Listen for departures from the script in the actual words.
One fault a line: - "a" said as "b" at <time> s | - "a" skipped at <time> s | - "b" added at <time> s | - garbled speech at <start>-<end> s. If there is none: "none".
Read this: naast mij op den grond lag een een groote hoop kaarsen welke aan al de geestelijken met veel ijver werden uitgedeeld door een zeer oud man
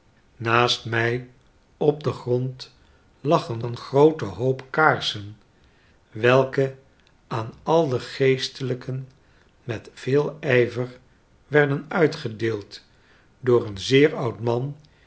none